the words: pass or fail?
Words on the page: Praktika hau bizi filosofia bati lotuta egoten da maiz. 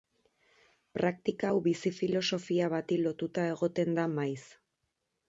pass